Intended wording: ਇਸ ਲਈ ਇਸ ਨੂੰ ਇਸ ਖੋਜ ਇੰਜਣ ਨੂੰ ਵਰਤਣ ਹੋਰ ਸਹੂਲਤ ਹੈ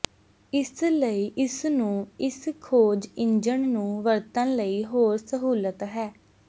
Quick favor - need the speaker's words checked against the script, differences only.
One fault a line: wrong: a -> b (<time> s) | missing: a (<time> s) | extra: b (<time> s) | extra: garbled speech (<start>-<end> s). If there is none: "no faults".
extra: ਲਈ (4.6 s)